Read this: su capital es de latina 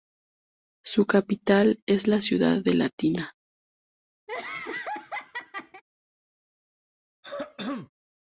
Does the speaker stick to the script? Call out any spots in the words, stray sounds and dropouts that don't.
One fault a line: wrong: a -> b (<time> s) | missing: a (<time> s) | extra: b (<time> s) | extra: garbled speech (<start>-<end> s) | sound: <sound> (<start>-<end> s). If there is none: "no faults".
extra: la ciudad (2.1 s)
sound: laugh (4.3-5.8 s)
sound: throat clearing (7.2-7.9 s)